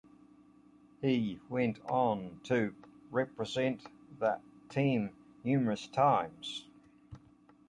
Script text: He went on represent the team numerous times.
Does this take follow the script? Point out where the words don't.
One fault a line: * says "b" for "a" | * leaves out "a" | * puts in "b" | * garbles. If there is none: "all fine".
* puts in "to"